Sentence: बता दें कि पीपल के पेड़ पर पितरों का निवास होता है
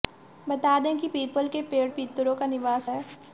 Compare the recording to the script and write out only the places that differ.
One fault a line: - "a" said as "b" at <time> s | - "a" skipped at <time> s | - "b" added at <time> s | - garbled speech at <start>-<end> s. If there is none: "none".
- "पर" skipped at 1.9 s
- "होता" skipped at 2.9 s